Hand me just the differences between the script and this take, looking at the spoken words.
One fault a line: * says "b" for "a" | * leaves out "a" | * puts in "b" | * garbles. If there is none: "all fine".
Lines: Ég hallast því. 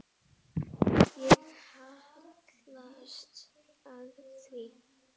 * puts in "að"